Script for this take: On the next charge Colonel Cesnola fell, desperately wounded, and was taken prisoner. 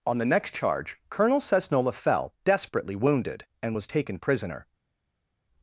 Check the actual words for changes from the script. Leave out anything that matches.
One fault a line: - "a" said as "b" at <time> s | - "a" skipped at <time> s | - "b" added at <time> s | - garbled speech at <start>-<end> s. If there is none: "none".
none